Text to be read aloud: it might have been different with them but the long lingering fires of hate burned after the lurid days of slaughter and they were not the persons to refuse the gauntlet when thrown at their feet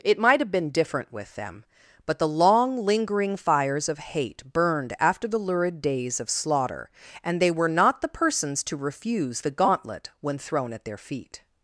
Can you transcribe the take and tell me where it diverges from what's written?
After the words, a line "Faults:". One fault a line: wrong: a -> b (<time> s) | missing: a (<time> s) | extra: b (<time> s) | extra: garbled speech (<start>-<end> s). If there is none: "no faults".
it might have been different with them but the long lingering fires of hate burned after the lurid days of slaughter and they were not the persons to refuse the gauntlet when thrown at their feet
Faults:
no faults